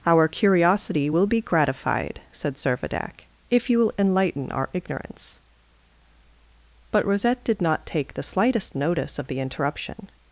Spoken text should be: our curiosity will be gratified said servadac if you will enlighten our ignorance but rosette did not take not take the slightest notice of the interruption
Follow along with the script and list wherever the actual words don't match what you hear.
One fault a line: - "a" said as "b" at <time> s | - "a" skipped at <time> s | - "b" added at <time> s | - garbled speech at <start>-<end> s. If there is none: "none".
- "not take" skipped at 8.1 s